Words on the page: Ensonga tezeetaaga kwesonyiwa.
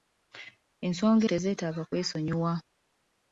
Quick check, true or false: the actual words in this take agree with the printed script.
true